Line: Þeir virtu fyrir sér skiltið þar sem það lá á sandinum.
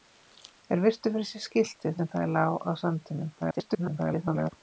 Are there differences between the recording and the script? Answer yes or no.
yes